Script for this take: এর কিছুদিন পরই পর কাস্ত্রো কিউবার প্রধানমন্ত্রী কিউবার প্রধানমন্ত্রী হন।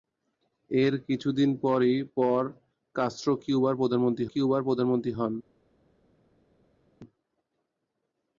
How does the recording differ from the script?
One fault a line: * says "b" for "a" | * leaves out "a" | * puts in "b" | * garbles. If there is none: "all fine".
all fine